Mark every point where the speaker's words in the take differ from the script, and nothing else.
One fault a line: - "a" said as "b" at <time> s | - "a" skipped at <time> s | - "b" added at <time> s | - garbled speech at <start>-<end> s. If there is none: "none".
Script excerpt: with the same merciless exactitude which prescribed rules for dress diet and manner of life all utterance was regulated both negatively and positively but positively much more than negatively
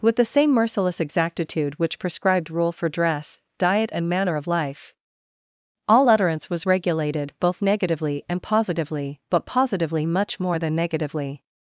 - "rules" said as "rule" at 2.5 s